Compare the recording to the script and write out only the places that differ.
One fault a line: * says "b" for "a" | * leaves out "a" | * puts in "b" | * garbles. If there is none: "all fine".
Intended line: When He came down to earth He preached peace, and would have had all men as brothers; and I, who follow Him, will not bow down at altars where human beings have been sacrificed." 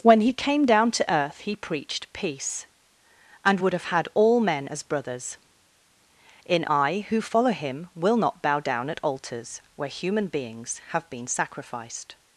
* says "in" for "and"